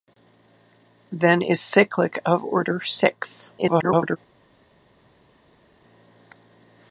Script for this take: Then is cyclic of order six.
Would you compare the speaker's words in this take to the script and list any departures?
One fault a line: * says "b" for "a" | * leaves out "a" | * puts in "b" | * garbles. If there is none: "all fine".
* garbles